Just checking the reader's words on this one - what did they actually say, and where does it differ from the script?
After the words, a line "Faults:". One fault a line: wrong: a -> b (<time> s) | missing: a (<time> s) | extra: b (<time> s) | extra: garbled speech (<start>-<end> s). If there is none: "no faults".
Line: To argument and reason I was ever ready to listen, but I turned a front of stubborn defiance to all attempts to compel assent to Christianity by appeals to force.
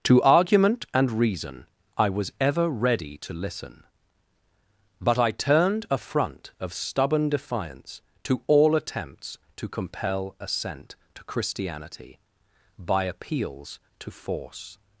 To argument and reason I was ever ready to listen, but I turned a front of stubborn defiance to all attempts to compel assent to Christianity by appeals to force.
Faults:
no faults